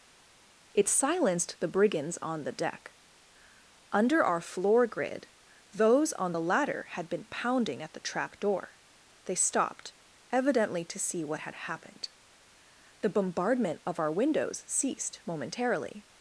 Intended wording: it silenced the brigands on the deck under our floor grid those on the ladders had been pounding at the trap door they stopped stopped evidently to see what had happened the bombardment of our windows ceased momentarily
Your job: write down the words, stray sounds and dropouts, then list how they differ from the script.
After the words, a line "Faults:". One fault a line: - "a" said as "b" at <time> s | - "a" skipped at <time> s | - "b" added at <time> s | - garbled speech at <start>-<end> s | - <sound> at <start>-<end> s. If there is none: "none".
it silenced the brigands on the deck under our floor grid those on the ladder had been pounding at the trap door they stopped evidently to see what had happened the bombardment of our windows ceased momentarily
Faults:
- "ladders" said as "ladder" at 6.4 s
- "stopped" skipped at 9.9 s